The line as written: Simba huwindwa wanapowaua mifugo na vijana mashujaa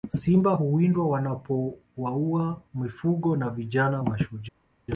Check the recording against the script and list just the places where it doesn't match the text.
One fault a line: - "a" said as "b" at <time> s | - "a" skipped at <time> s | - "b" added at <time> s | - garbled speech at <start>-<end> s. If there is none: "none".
none